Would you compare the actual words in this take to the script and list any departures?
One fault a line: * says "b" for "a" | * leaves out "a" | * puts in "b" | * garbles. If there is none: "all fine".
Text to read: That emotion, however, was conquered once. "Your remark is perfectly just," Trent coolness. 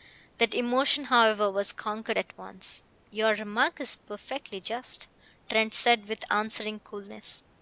* puts in "at"
* puts in "said with answering"